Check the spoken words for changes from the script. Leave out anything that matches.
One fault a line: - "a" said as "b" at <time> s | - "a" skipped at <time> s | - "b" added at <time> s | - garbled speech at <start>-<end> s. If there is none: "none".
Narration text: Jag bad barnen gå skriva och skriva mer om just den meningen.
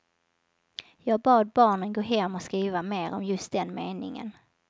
- "skriva" said as "hem" at 2.0 s